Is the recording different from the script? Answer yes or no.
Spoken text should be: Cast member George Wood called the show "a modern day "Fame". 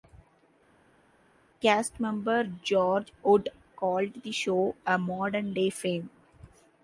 no